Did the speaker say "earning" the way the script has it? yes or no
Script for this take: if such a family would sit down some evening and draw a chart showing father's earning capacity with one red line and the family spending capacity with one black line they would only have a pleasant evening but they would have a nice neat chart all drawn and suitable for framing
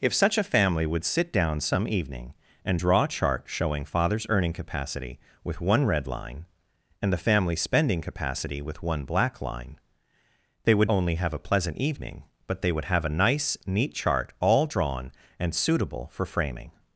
yes